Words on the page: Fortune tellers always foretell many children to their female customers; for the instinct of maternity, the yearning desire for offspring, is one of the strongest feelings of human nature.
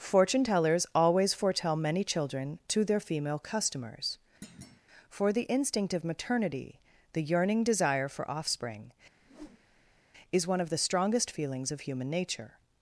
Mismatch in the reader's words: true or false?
false